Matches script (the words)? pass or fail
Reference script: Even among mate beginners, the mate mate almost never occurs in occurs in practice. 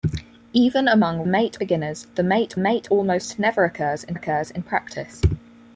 pass